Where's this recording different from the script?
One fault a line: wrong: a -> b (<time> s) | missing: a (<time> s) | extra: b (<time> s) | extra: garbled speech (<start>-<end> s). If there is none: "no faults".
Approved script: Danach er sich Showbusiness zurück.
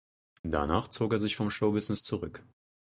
extra: zog (0.9 s)
extra: vom (1.4 s)